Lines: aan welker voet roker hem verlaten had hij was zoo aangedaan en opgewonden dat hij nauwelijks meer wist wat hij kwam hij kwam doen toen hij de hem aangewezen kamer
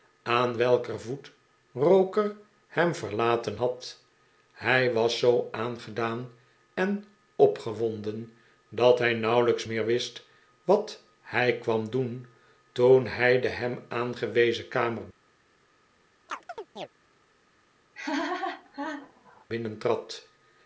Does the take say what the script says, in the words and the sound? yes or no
no